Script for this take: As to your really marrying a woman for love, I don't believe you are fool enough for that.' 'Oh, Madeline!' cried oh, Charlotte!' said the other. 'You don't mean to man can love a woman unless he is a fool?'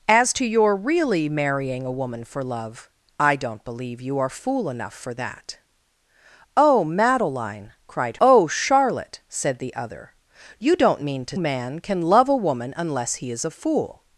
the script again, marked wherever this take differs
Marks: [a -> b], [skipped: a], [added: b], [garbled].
As to your really marrying a woman for love, I don't believe you are fool enough for that.' 'Oh, Madeline!' cried oh, Charlotte!' said the other. 'You don't mean to man can love a woman unless he is a fool?'